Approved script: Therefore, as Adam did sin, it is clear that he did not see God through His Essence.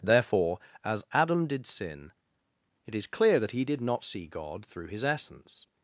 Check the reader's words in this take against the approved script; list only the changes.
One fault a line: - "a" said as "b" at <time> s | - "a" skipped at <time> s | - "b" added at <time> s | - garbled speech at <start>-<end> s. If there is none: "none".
none